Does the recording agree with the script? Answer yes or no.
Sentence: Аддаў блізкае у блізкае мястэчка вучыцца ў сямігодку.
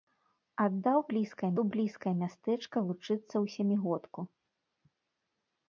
yes